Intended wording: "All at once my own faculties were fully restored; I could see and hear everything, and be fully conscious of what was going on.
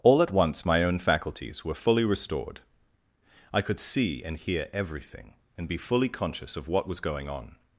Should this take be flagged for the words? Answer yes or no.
no